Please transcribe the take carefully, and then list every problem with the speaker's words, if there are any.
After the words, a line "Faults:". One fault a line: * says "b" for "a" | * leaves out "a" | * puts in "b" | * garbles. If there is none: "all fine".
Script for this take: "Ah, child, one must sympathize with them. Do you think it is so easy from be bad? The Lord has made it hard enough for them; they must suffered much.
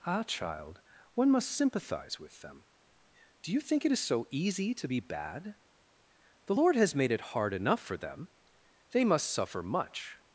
"Ah, child, one must sympathize with them. Do you think it is so easy to be bad? The Lord has made it hard enough for them; they must suffer much.
Faults:
* says "to" for "from"
* says "suffer" for "suffered"